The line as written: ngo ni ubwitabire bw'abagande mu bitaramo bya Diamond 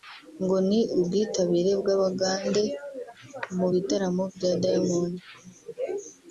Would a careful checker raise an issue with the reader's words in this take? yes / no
no